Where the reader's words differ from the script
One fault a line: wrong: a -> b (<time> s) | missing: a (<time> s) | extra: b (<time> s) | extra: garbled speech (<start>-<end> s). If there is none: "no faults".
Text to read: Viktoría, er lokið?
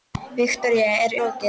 no faults